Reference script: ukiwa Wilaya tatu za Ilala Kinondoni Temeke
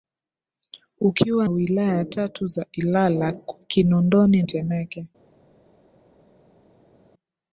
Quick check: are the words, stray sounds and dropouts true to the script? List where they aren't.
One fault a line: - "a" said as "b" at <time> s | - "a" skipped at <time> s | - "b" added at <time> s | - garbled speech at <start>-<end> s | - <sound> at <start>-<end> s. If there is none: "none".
none